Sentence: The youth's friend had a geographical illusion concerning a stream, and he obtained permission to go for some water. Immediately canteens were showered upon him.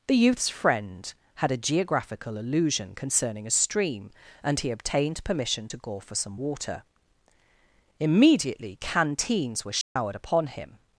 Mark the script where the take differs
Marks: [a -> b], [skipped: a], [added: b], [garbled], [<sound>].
The youth's friend had a geographical illusion concerning a stream, and he obtained permission to go for some water. Immediately canteens were showered [dropout] upon him.